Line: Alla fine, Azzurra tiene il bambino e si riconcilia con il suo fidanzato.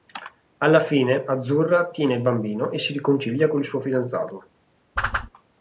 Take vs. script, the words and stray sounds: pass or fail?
fail